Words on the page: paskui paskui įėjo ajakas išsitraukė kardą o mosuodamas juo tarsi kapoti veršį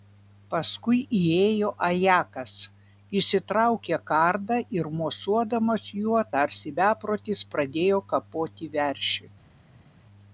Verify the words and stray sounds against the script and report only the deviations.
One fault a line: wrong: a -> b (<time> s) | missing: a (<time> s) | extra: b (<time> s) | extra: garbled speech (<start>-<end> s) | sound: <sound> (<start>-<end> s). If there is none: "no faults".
missing: paskui (1.0 s)
wrong: o -> ir (4.8 s)
extra: beprotis pradėjo (6.8 s)